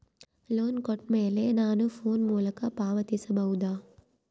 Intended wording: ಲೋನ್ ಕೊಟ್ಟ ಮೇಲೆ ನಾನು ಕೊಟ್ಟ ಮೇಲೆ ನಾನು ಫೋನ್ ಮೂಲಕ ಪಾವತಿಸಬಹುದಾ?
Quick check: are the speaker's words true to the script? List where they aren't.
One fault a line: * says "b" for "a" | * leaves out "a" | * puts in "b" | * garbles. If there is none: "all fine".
* leaves out "ಕೊಟ್ಟ ಮೇಲೆ ನಾನು"